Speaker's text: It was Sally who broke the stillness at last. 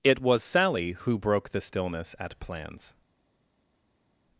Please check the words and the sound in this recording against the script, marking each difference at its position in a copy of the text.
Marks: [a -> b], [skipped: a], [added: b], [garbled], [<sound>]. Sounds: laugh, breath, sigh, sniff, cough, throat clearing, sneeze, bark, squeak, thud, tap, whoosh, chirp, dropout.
It was Sally who broke the stillness at [last. -> plans]